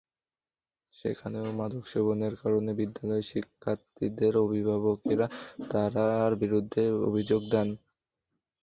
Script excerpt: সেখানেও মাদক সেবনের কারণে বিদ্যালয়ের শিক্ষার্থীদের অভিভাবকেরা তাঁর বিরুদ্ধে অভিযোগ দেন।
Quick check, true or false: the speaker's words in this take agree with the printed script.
true